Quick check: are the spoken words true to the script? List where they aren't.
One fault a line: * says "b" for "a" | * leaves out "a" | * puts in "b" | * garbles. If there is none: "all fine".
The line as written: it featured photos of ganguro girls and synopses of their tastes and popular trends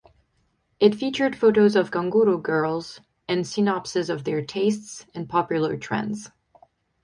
all fine